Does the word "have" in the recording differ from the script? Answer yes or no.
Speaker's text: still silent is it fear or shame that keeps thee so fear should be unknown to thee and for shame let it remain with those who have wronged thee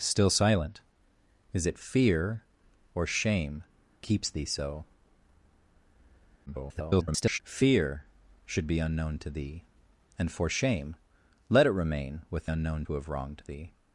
no